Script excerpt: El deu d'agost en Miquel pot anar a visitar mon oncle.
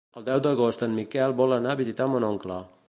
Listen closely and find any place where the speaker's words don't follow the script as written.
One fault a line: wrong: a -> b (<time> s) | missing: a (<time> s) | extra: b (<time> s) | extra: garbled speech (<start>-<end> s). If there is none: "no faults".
wrong: pot -> vol (1.4 s)